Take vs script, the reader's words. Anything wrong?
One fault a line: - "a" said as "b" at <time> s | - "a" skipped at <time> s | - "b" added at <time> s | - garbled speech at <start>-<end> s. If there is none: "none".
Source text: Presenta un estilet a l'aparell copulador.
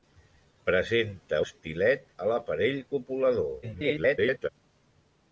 - "un" skipped at 1.4 s
- garbled speech at 3.6-4.5 s